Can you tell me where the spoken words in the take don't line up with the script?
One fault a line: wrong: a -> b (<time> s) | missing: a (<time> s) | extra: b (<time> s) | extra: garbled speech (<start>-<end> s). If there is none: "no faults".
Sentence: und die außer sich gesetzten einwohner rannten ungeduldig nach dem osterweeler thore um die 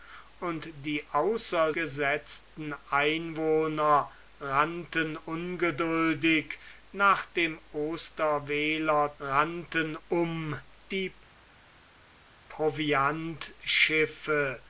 missing: sich (1.7 s)
wrong: thore -> rannten (9.2 s)